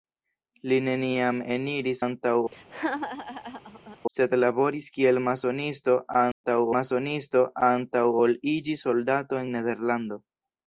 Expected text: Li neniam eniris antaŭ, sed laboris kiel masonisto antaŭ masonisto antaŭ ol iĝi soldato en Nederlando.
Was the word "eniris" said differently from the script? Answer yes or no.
no